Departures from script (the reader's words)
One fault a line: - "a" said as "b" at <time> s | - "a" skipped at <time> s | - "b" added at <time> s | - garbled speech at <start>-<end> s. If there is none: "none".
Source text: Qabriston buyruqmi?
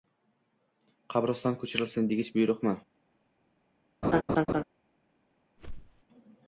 - "ko‘chirilsin degich" added at 1.6 s